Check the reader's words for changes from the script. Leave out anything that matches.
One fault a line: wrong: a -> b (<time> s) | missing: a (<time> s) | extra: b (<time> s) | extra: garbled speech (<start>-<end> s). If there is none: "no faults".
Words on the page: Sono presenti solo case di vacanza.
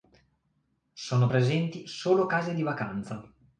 no faults